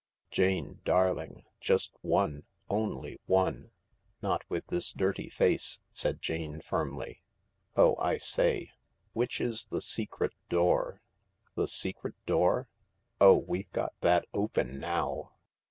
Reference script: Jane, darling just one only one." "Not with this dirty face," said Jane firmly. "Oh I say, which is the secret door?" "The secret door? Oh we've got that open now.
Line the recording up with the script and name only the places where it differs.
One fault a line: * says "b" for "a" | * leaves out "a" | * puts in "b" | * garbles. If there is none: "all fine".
all fine